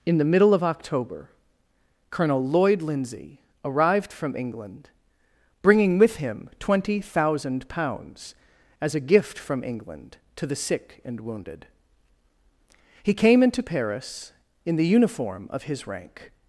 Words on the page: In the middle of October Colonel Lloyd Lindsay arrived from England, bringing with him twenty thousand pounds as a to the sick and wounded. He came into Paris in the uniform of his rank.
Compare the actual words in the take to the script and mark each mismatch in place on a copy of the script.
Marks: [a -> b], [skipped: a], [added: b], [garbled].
In the middle of October Colonel Lloyd Lindsay arrived from England, bringing with him twenty thousand pounds as a [added: gift from England] to the sick and wounded. He came into Paris in the uniform of his rank.